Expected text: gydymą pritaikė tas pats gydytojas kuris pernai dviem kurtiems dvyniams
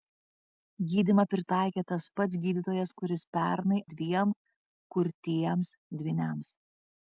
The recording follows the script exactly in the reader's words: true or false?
true